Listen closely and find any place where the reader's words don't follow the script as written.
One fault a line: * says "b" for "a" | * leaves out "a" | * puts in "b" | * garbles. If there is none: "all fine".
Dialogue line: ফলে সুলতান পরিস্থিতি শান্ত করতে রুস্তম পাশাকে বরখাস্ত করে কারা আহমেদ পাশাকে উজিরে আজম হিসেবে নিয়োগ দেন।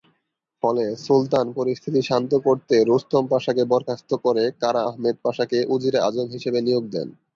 all fine